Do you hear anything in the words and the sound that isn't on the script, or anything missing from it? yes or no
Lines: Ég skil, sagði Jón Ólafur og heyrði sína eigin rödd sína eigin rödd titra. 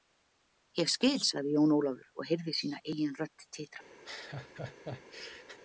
yes